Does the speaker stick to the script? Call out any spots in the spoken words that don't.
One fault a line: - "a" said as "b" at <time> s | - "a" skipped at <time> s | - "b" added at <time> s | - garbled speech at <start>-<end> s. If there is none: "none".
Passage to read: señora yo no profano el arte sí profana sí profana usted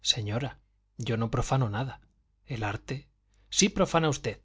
- "nada" added at 1.7 s
- "sí profana" skipped at 4.1 s